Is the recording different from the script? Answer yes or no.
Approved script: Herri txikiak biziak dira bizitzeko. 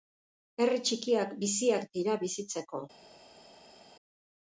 no